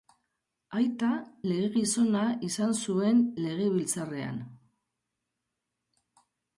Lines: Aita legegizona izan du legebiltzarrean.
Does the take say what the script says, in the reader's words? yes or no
no